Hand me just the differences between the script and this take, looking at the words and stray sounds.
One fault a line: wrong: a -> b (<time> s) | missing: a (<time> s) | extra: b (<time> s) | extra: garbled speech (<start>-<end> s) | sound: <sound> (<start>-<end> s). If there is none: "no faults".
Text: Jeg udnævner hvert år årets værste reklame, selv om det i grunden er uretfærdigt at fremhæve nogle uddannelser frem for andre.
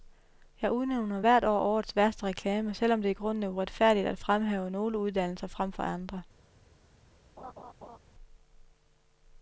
sound: laugh (7.4-8.0 s)